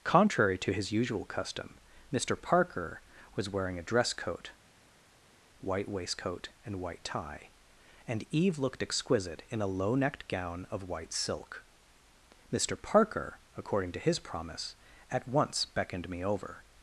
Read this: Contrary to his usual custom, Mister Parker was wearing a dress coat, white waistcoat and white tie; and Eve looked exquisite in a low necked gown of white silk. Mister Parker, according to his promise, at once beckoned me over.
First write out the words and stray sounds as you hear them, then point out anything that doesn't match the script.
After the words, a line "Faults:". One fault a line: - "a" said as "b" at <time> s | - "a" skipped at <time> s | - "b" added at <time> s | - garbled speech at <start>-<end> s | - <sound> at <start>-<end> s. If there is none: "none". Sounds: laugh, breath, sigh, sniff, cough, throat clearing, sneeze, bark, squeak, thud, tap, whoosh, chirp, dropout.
Contrary to his usual custom, Mister Parker was wearing a dress coat, white waistcoat and white tie; and Eve looked exquisite in a low necked gown of white silk. Mister Parker, according to his promise, at once beckoned me over.
Faults:
none